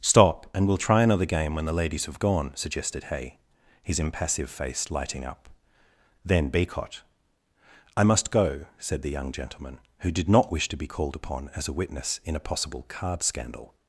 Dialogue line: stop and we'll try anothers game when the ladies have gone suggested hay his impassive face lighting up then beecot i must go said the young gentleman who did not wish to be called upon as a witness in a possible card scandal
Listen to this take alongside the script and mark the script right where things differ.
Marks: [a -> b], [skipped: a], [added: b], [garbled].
stop and we'll try [anothers -> another] game when the ladies have gone suggested hay his impassive face lighting up then beecot i must go said the young gentleman who did not wish to be called upon as a witness in a possible card scandal